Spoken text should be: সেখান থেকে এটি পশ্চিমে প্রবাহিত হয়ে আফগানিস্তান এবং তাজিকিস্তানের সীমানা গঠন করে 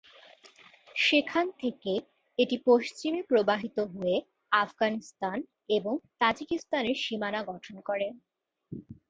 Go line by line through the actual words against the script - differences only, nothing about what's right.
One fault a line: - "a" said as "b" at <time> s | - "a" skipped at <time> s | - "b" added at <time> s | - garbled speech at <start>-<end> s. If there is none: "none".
none